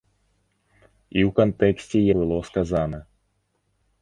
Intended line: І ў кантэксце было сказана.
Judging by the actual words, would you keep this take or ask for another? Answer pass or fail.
pass